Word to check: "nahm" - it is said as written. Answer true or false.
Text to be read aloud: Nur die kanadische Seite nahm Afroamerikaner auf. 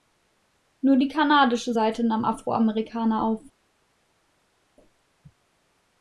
true